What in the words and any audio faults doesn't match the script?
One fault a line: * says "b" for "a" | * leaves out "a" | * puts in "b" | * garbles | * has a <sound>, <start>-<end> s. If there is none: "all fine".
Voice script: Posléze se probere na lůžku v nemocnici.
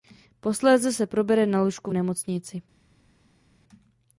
all fine